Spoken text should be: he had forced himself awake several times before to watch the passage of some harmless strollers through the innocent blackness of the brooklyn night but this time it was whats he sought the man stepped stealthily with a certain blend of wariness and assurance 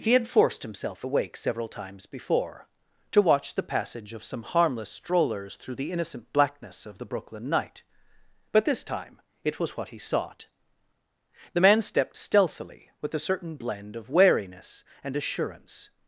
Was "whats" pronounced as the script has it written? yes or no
no